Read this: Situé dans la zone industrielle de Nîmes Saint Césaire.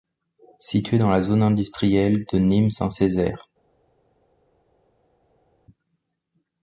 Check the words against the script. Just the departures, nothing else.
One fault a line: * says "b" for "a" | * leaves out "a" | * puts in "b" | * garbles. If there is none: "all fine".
all fine